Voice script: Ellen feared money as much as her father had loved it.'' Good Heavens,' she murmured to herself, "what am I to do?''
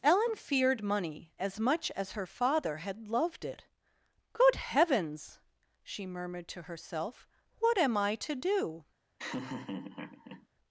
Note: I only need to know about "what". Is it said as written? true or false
true